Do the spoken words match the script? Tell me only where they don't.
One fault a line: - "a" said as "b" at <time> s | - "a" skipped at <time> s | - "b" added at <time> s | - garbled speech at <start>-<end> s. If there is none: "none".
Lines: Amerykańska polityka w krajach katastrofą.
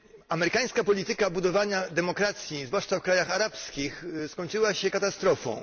- "budowania demokracji zwłaszcza" added at 1.3 s
- "arabskich skończyła się" added at 3.3 s